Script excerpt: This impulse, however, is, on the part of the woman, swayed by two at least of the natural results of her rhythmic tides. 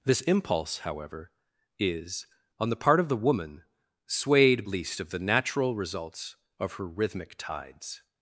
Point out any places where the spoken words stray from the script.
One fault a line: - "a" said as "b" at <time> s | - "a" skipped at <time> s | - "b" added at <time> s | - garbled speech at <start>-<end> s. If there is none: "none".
- "by two at" skipped at 4.6 s